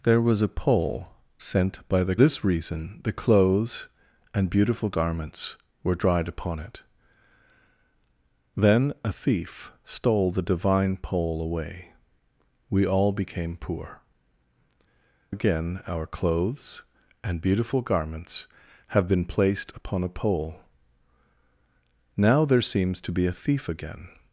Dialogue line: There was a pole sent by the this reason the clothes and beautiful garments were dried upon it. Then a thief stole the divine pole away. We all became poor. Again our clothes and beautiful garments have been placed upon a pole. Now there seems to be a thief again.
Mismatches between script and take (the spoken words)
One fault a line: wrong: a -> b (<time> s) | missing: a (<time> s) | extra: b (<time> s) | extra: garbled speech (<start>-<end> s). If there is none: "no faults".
no faults